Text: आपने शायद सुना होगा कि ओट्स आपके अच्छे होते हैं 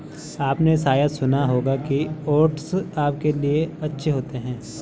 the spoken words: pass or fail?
fail